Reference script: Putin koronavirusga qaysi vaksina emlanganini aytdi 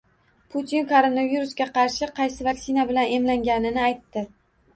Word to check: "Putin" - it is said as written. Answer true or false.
true